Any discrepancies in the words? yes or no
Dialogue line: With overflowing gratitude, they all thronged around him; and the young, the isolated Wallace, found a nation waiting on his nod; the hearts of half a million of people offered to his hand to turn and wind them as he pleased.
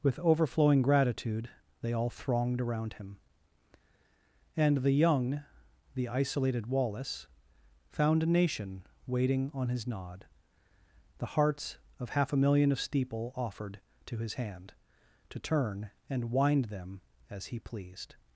yes